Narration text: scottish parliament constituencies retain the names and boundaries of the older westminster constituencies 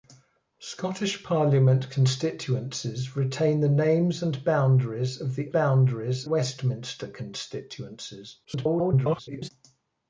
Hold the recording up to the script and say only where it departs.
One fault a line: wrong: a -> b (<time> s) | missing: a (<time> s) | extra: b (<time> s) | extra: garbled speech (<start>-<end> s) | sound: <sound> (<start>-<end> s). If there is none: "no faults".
wrong: older -> boundaries (5.5 s)
extra: garbled speech (8.4-9.5 s)